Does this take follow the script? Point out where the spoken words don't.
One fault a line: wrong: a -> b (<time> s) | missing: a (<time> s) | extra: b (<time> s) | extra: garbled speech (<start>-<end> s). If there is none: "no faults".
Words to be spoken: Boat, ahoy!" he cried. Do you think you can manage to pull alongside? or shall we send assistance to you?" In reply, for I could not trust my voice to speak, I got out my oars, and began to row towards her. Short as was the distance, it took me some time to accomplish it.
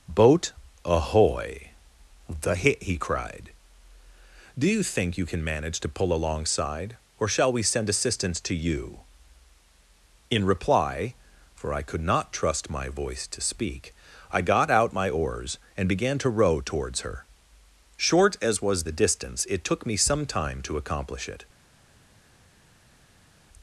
extra: the hit (2.3 s)